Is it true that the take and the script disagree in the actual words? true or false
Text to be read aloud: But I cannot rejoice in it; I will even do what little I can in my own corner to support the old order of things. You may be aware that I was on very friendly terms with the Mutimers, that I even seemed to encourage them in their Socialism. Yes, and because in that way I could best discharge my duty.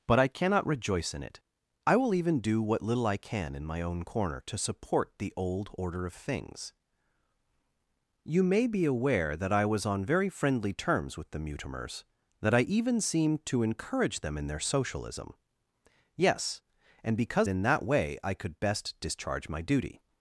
false